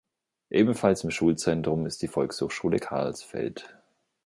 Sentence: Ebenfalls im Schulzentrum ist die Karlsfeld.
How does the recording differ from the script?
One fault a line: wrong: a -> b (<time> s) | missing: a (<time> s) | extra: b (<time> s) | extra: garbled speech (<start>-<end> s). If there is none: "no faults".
extra: Volkshochschule (2.1 s)